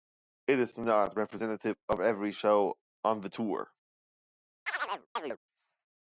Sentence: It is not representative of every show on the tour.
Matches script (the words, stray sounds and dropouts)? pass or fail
fail